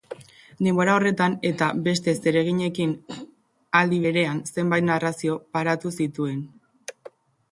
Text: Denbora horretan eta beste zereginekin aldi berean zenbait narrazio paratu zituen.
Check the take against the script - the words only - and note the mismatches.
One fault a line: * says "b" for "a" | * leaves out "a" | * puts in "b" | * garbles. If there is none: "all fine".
all fine